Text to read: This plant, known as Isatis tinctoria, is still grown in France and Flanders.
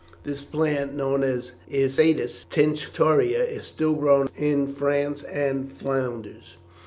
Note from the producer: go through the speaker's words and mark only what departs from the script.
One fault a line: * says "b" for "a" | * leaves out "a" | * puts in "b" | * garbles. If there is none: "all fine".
all fine